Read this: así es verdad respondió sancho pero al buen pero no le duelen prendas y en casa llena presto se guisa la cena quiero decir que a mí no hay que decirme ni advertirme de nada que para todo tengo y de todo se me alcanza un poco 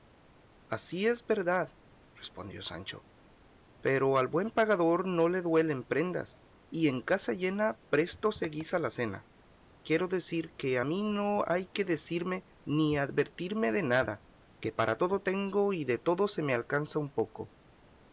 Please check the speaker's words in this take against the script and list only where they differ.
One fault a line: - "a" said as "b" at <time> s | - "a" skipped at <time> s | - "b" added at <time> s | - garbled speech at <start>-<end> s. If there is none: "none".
- "pero" said as "pagador" at 4.5 s